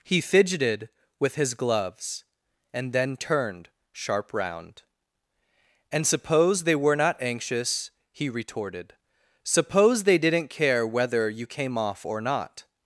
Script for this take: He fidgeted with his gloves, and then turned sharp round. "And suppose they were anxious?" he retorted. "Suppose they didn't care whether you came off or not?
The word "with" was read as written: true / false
true